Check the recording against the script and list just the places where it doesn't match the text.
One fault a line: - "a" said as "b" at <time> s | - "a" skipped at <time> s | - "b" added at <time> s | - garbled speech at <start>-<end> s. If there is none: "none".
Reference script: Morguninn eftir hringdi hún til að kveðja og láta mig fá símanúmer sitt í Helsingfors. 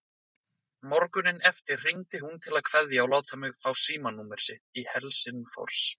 none